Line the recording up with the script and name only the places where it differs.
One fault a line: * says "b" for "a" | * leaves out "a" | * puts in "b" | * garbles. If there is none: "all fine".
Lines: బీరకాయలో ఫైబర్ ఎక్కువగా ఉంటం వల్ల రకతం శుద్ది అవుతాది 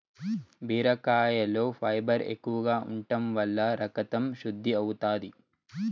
all fine